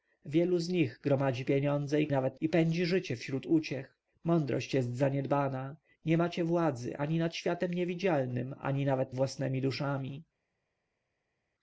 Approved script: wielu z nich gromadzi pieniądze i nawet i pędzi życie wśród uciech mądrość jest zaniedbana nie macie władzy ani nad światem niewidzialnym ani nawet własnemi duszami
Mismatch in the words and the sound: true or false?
false